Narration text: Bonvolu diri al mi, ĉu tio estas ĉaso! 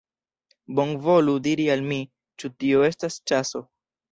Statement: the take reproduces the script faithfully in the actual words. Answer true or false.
true